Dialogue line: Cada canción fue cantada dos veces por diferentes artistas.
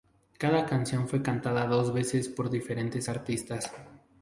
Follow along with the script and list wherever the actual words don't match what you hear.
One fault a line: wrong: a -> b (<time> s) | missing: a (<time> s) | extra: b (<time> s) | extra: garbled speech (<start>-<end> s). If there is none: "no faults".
no faults